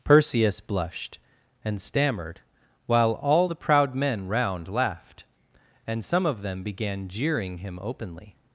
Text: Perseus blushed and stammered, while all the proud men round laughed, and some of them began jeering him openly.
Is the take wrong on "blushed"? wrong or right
right